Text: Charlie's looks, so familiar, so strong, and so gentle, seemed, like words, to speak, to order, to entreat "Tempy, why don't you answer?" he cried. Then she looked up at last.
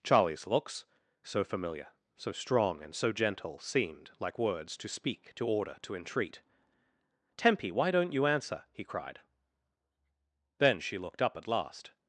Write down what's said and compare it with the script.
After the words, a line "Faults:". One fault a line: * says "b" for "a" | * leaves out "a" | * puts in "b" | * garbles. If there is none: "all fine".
Charlie's looks, so familiar, so strong, and so gentle, seemed, like words, to speak, to order, to entreat "Tempy, why don't you answer?" he cried. Then she looked up at last.
Faults:
all fine